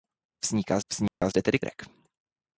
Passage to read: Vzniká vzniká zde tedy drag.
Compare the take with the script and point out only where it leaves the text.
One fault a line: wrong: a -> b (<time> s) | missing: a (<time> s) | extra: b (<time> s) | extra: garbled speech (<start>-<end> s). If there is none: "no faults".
no faults